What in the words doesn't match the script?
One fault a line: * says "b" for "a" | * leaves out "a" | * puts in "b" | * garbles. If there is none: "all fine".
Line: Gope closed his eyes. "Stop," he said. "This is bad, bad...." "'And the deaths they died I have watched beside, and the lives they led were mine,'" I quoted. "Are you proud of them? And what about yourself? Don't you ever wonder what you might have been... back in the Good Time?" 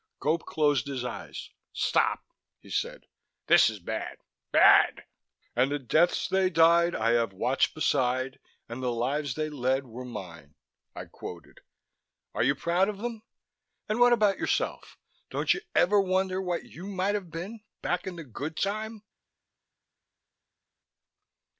all fine